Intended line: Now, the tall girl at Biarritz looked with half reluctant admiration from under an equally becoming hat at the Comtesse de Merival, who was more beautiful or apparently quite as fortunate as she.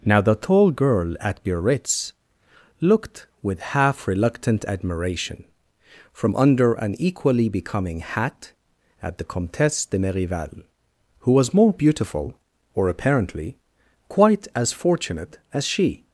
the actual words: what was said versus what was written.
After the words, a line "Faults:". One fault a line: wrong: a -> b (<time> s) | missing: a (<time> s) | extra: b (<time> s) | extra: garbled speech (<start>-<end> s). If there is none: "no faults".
Now, the tall girl at Biarritz looked with half reluctant admiration from under an equally becoming hat at the Comtesse de Merival, who was more beautiful or apparently quite as fortunate as she.
Faults:
no faults